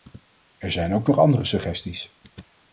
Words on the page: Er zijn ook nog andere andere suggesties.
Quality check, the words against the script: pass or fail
fail